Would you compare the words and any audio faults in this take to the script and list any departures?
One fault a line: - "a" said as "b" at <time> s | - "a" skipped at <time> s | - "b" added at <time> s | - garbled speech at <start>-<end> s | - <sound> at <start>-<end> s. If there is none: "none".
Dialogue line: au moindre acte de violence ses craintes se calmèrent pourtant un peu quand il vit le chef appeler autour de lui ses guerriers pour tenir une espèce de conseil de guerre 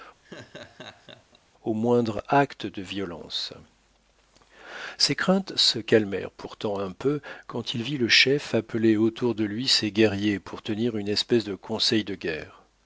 - laugh at 0.2-1.4 s